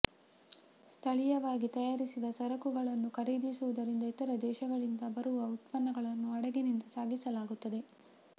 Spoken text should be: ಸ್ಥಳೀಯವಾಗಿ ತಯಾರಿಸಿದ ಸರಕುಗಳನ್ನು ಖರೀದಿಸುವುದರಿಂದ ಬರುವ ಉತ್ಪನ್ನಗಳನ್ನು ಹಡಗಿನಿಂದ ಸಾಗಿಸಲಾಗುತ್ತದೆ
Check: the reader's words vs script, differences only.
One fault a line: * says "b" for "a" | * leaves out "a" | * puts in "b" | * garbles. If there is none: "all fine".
* puts in "ಇತರ ದೇಶಗಳಿಂದ"